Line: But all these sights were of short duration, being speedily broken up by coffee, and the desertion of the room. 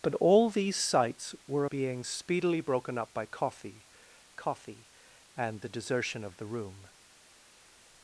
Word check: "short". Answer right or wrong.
wrong